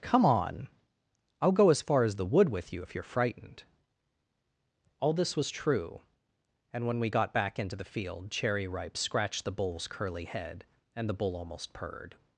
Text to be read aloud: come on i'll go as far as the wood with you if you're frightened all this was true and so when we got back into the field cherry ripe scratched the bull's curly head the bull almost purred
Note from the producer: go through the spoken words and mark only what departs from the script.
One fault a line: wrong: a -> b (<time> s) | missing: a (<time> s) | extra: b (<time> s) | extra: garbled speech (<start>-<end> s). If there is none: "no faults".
missing: so (6.9 s)
extra: and (10.9 s)